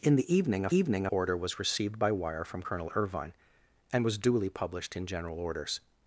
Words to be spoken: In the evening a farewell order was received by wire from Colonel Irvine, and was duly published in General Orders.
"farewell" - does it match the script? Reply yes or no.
no